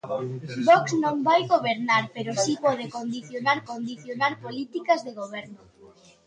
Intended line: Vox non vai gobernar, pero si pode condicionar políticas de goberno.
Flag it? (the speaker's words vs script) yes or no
yes